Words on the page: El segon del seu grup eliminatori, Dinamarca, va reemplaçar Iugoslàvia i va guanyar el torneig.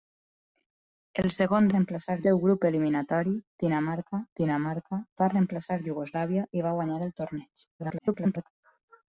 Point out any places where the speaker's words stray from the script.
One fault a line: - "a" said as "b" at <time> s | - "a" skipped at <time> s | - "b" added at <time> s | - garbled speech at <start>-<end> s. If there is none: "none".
- "del" said as "reemplaçar" at 1.7 s
- "Dinamarca" added at 4.4 s
- garbled speech at 7.8-8.5 s